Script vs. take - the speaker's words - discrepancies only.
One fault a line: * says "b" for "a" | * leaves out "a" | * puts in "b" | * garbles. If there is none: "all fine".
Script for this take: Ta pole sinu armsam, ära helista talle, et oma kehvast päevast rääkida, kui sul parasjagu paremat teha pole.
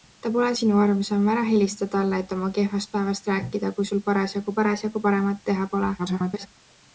* puts in "parasjagu"
* garbles